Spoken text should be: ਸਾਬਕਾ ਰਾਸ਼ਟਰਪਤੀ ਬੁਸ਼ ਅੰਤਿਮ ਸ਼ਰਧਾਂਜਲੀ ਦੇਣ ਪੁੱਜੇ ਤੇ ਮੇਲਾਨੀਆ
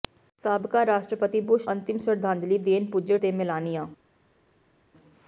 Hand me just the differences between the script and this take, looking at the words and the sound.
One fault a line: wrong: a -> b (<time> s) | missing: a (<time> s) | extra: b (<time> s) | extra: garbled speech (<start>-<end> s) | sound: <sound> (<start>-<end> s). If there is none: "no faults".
no faults